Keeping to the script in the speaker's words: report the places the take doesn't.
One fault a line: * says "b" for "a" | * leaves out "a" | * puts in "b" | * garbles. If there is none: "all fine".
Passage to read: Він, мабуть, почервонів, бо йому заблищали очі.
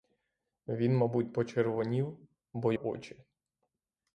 * leaves out "йому заблищали"